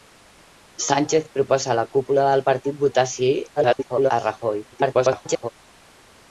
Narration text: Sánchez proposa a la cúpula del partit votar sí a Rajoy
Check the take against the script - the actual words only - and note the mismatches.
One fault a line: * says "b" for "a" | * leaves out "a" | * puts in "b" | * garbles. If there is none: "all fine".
* garbles
* garbles